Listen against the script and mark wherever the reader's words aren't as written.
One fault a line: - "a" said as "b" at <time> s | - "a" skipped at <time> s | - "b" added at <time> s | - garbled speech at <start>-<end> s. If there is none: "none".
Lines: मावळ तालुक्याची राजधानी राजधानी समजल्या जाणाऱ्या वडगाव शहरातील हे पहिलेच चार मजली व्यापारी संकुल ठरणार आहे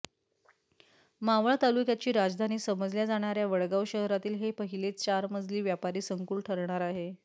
- "राजधानी" skipped at 2.6 s